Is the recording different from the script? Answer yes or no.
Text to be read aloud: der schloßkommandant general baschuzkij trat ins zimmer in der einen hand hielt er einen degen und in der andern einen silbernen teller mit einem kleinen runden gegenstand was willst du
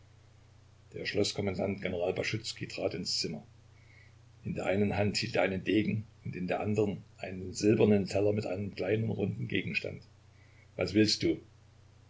no